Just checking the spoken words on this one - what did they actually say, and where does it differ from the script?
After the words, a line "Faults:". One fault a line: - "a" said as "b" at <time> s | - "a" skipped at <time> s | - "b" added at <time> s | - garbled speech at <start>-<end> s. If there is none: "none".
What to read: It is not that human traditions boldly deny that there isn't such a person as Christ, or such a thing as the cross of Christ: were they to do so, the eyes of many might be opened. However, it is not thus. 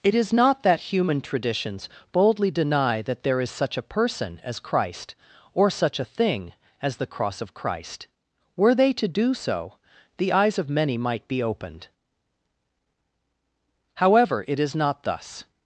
It is not that human traditions boldly deny that there is such a person as Christ, or such a thing as the cross of Christ: were they to do so, the eyes of many might be opened. However, it is not thus.
Faults:
- "isn't" said as "is" at 3.4 s